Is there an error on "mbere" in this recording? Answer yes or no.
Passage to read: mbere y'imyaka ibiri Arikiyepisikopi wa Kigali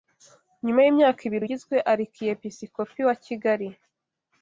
yes